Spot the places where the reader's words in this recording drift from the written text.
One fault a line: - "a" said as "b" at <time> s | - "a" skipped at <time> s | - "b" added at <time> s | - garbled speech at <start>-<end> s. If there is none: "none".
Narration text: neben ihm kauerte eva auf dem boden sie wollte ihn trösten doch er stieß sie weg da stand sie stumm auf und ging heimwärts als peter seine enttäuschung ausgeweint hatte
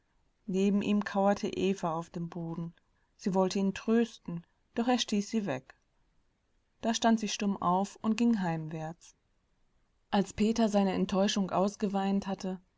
none